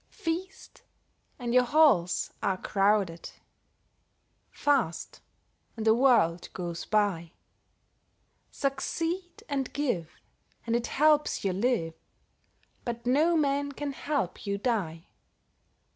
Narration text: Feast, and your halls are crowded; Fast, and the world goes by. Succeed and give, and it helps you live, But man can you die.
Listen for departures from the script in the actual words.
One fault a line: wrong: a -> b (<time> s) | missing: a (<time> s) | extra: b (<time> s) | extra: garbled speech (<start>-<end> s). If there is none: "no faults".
extra: no (13.1 s)
extra: help (13.9 s)